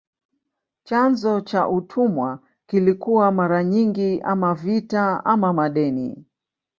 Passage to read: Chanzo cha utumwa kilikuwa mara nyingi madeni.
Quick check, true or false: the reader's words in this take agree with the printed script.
false